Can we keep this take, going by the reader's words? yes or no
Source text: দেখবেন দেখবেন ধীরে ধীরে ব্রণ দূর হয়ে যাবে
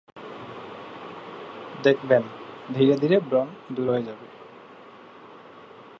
no